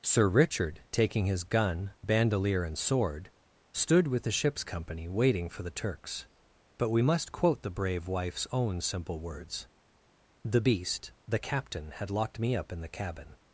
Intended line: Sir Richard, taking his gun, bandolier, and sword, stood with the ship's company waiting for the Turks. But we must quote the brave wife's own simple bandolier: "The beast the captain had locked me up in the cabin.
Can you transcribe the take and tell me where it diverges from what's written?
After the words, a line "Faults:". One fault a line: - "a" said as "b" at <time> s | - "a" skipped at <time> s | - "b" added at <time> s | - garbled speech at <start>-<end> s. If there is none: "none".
Sir Richard, taking his gun, bandolier, and sword, stood with the ship's company waiting for the Turks. But we must quote the brave wife's own simple words: "The beast the captain had locked me up in the cabin.
Faults:
- "bandolier" said as "words" at 9.2 s